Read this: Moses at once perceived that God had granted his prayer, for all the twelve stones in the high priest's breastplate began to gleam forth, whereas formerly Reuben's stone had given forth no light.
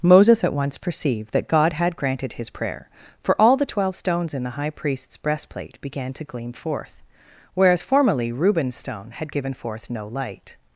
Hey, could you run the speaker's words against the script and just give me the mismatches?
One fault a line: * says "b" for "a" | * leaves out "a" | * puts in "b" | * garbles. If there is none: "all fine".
all fine